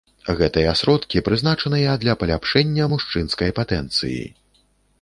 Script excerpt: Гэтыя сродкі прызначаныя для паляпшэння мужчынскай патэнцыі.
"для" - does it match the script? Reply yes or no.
yes